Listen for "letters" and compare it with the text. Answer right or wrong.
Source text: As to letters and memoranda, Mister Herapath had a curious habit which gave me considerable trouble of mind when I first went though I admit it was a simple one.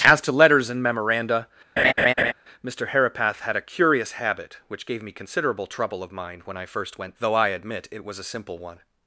right